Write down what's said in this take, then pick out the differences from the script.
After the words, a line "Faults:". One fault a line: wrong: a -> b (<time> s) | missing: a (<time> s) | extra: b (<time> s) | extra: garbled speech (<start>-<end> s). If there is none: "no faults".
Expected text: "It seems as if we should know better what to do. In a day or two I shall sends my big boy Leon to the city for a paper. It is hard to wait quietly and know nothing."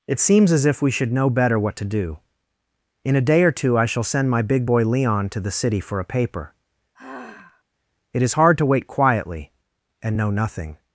"It seems as if we should know better what to do. In a day or two I shall send my big boy Leon to the city for a paper. It is hard to wait quietly and know nothing."
Faults:
wrong: sends -> send (4.0 s)